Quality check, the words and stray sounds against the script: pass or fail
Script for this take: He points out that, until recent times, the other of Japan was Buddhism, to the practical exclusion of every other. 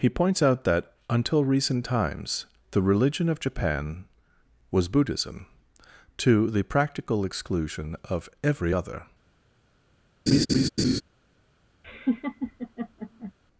fail